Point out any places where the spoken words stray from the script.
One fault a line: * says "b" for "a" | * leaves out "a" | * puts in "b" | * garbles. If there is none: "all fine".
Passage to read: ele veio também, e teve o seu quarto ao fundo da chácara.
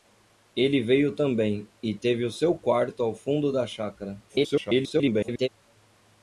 * garbles